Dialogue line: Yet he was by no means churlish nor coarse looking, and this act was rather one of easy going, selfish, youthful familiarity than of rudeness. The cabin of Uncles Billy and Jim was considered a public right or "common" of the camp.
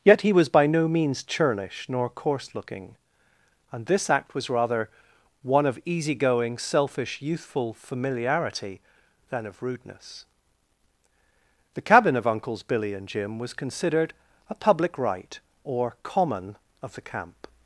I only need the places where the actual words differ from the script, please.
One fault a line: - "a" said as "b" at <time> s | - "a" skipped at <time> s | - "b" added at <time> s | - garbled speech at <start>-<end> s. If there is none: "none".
none